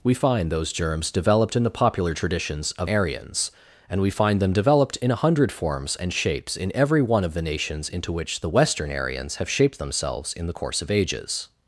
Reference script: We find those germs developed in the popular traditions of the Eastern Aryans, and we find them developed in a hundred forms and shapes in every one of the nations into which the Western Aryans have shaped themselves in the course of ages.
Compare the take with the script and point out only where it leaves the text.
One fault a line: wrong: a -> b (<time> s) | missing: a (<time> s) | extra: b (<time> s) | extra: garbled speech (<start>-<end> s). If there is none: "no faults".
missing: the Eastern (2.9 s)